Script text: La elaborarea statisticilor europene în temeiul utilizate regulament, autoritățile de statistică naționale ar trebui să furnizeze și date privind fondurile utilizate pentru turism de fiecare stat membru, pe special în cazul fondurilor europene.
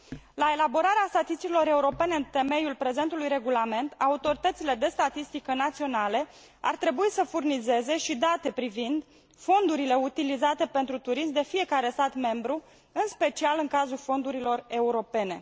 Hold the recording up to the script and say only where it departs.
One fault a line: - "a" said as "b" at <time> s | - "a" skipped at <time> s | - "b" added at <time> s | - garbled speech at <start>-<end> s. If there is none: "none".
- "utilizate" said as "prezentului" at 2.8 s
- "pe" said as "în" at 12.9 s